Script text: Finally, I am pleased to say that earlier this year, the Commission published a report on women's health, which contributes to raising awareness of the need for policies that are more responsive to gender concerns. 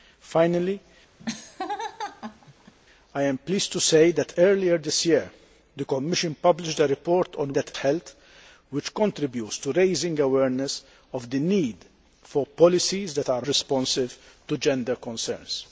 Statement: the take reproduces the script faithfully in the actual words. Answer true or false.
false